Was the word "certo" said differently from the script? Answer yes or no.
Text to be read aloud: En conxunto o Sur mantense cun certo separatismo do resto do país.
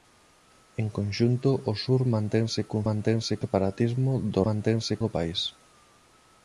yes